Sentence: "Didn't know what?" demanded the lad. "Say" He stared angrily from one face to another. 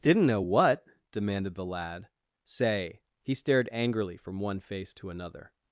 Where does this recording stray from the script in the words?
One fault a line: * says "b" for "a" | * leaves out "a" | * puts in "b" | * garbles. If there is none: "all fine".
all fine